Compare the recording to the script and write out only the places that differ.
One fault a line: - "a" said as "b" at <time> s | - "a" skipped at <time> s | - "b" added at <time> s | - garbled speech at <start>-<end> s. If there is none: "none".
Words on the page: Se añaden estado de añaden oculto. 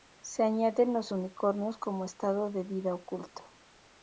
- "los unicornios como" added at 0.9 s
- "añaden" said as "vida" at 2.6 s